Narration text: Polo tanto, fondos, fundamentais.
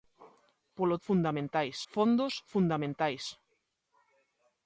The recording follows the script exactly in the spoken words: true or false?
false